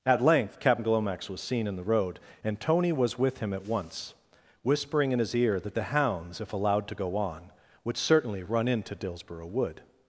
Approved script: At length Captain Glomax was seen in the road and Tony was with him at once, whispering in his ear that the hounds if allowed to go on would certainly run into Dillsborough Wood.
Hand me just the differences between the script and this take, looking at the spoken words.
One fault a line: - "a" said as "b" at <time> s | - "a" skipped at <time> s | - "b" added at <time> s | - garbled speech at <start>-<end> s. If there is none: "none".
none